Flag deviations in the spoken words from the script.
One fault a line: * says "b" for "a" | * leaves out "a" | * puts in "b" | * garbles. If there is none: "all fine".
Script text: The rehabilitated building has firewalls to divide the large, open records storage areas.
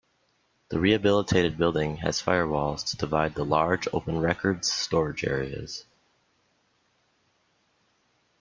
all fine